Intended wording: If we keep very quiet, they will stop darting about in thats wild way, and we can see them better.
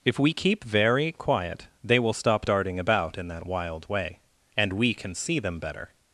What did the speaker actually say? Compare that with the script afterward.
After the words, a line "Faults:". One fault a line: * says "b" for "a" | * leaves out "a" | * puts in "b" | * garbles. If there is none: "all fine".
If we keep very quiet, they will stop darting about in that wild way, and we can see them better.
Faults:
* says "that" for "thats"